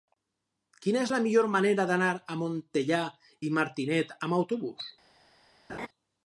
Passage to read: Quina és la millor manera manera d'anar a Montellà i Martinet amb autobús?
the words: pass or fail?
fail